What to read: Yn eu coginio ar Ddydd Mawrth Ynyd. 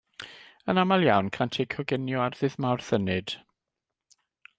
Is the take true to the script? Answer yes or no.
no